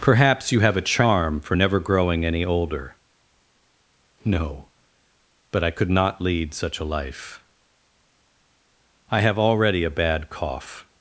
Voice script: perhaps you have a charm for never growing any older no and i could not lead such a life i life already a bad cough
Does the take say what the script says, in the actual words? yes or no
no